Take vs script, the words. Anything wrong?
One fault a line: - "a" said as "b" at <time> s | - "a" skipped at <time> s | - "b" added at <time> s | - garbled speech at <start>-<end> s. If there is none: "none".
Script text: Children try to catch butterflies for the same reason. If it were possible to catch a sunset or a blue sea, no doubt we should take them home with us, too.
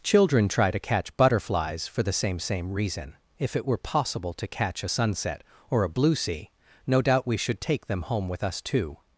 - "same" added at 2.4 s